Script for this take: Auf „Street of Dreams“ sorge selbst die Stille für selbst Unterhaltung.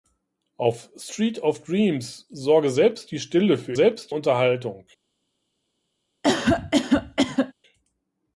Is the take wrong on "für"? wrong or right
right